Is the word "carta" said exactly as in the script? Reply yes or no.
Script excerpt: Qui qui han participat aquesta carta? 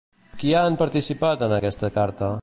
yes